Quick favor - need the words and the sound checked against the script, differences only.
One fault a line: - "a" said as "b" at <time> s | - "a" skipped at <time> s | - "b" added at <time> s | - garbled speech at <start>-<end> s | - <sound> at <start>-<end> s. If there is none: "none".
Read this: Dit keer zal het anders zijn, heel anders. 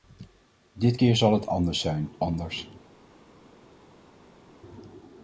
- "heel" skipped at 2.1 s